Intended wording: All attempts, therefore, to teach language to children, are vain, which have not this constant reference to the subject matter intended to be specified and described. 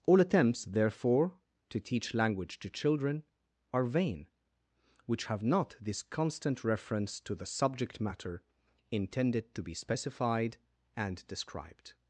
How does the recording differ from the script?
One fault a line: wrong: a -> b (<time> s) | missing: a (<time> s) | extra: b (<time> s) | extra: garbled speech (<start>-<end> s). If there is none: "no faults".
no faults